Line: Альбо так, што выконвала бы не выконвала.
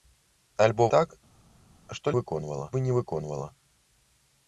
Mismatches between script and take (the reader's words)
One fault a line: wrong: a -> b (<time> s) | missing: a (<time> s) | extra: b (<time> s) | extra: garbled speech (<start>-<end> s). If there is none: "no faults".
no faults